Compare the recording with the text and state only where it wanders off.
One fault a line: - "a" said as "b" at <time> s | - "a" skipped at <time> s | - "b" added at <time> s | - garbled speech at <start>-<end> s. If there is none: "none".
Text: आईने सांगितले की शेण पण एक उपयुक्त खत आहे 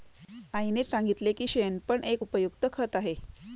none